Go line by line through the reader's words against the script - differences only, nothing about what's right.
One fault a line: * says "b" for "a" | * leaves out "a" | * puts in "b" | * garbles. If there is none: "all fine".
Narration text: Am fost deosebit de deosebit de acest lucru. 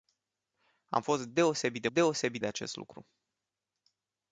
all fine